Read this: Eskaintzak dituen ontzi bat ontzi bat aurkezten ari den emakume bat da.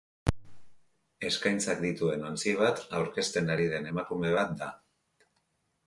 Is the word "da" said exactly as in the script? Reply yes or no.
yes